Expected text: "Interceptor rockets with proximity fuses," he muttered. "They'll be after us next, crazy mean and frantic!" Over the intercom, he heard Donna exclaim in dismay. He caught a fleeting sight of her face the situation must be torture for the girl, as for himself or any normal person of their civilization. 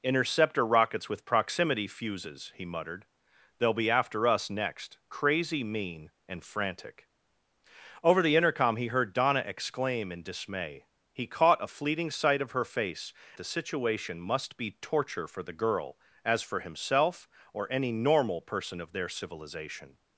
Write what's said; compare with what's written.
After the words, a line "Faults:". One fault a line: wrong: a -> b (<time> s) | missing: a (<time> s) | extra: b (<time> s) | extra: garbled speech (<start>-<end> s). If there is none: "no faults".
"Interceptor rockets with proximity fuses," he muttered. "They'll be after us next, crazy mean and frantic!" Over the intercom, he heard Donna exclaim in dismay. He caught a fleeting sight of her face the situation must be torture for the girl, as for himself or any normal person of their civilization.
Faults:
no faults